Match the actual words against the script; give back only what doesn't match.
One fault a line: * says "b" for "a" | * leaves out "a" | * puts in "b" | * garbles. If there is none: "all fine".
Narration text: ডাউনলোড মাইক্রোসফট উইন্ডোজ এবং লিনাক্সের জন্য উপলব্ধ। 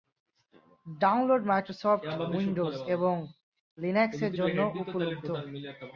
all fine